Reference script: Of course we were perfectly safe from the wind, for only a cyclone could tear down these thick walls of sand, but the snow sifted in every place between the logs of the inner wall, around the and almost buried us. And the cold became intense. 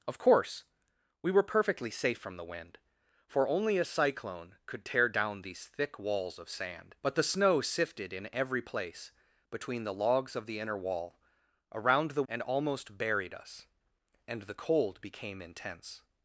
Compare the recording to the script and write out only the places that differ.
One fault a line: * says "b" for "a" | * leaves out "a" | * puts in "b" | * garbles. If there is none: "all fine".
all fine